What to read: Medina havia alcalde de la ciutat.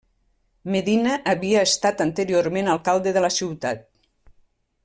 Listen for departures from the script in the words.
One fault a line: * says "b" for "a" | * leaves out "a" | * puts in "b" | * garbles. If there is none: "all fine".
* puts in "estat anteriorment"